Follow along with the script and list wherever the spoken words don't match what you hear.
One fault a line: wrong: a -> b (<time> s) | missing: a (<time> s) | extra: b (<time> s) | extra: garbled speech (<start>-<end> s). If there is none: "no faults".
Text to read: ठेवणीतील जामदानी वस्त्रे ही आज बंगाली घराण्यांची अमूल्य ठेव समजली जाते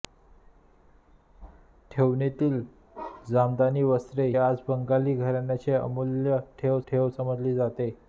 missing: ही (4.3 s)
extra: ठेव (6.9 s)